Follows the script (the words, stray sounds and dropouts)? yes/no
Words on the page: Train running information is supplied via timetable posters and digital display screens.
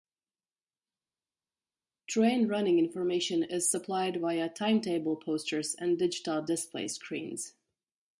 yes